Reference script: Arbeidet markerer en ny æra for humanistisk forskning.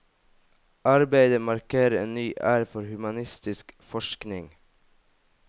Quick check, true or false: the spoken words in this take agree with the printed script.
true